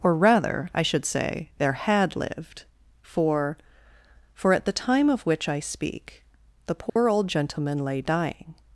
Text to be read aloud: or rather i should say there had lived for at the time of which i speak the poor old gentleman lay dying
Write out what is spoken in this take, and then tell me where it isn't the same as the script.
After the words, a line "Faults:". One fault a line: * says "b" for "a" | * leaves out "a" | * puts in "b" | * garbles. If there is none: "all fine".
or rather i should say there had lived for for at the time of which i speak the poor old gentleman lay dying
Faults:
* puts in "for"